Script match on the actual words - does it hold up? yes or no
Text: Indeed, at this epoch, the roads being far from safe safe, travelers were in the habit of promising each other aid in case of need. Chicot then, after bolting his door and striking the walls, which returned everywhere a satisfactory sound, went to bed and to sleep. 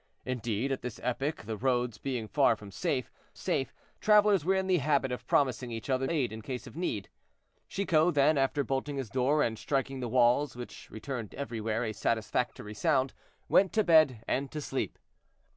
yes